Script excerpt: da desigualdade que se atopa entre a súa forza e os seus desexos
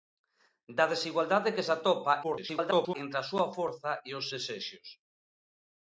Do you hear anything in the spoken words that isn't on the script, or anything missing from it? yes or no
yes